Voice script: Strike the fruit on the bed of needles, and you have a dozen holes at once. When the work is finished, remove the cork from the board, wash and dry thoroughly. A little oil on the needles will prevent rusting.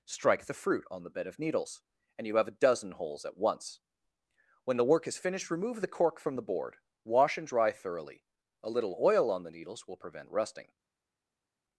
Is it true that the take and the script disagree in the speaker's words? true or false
false